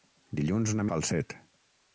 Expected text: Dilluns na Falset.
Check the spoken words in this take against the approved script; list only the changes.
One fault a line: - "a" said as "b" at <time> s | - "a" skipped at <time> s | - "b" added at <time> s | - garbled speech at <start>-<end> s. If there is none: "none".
none